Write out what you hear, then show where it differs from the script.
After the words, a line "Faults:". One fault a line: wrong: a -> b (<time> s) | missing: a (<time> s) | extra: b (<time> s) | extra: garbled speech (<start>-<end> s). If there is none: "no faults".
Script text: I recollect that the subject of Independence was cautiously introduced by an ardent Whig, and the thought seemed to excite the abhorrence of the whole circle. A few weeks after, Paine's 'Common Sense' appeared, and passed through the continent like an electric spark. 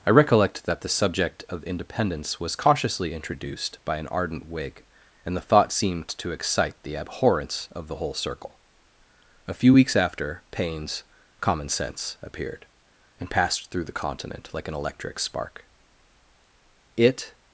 I recollect that the subject of Independence was cautiously introduced by an ardent Whig, and the thought seemed to excite the abhorrence of the whole circle. A few weeks after, Paine's 'Common Sense' appeared, and passed through the continent like an electric spark. It
Faults:
extra: It (17.0 s)